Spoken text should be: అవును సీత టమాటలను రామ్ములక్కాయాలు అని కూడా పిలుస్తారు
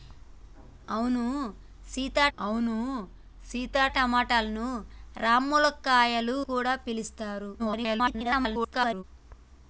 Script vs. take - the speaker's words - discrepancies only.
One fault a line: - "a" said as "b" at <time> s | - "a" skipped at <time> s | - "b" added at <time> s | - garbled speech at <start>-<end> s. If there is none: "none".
- "అవును సీత" added at 2.4 s
- "అని" skipped at 6.4 s
- garbled speech at 7.6-9.0 s